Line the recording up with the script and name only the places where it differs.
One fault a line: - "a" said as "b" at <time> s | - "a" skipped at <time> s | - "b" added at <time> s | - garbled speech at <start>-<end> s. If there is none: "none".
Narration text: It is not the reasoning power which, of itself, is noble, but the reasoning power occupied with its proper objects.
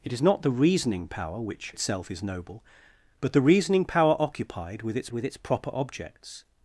- "of" skipped at 1.7 s
- "with its" added at 5.1 s